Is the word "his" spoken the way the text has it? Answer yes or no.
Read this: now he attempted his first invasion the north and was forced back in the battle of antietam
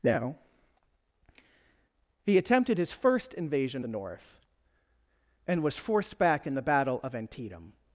yes